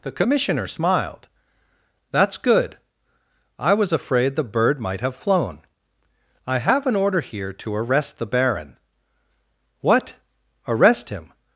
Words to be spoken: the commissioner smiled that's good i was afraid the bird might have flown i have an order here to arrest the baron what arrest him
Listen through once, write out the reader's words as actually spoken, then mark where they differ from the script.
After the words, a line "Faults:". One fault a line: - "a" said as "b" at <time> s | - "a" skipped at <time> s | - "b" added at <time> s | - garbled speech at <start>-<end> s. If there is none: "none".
the commissioner smiled that's good i was afraid the bird might have flown i have an order here to arrest the baron what arrest him
Faults:
none